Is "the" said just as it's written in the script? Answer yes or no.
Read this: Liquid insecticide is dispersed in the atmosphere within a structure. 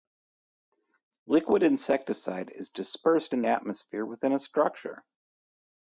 no